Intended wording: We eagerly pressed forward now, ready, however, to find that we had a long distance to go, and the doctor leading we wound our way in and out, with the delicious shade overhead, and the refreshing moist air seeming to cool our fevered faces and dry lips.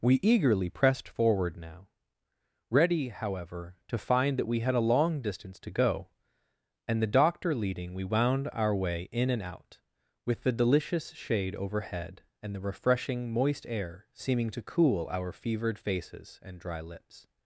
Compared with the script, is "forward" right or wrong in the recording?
right